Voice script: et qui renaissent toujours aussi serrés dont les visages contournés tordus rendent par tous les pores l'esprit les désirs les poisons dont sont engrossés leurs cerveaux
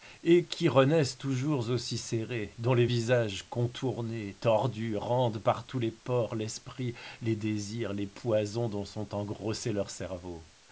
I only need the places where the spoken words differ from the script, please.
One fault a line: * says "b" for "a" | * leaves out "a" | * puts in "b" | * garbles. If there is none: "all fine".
all fine